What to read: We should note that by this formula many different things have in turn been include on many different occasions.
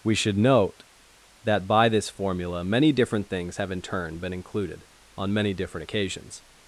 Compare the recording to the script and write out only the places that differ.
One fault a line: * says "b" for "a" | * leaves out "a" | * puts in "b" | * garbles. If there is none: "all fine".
* says "included" for "include"